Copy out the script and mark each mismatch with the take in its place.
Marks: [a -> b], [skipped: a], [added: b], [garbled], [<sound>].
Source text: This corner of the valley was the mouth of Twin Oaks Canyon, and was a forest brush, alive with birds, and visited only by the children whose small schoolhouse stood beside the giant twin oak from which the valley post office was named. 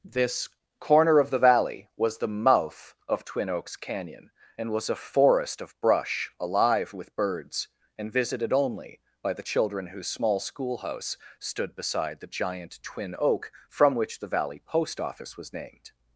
This corner of the valley was the mouth of Twin Oaks Canyon, and was a forest [added: of] brush, alive with birds, and visited only by the children whose small schoolhouse stood beside the giant twin oak from which the valley post office was named.